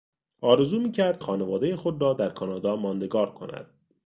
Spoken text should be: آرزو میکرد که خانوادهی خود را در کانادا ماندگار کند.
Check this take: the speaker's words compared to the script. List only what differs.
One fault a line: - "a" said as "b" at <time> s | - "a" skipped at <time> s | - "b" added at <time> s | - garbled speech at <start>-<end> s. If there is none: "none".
- "که" skipped at 1.2 s